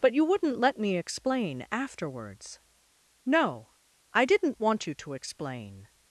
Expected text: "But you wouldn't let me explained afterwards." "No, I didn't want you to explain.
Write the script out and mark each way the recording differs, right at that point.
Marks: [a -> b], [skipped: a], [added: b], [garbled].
"But you wouldn't let me [explained -> explain] afterwards." "No, I didn't want you to explain.